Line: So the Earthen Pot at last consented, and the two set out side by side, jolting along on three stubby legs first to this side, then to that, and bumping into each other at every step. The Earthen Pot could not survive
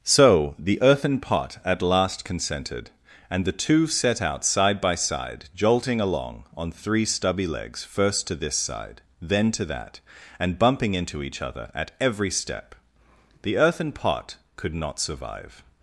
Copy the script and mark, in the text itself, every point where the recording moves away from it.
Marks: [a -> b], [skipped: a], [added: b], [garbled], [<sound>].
So the Earthen Pot at last consented, and the two set out side by side, jolting along on three stubby legs first to this side, then to that, and bumping into each other at every step. The Earthen Pot could not survive